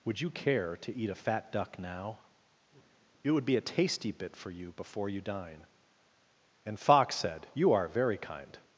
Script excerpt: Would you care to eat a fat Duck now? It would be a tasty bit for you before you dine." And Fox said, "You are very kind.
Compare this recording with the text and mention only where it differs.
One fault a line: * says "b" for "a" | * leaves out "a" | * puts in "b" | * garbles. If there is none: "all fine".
all fine